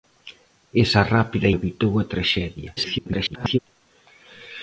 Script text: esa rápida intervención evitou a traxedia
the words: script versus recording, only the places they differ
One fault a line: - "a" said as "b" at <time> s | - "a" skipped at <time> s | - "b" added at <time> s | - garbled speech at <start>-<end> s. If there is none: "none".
- "intervención" skipped at 1.5 s
- garbled speech at 2.8-3.6 s